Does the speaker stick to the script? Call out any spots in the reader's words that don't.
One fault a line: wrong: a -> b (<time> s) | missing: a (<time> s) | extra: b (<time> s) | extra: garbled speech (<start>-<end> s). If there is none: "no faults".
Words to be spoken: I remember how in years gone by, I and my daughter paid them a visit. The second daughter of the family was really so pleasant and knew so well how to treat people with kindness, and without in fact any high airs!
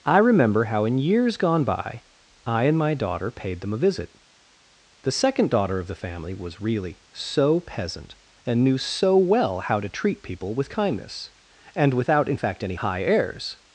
wrong: pleasant -> peasant (7.6 s)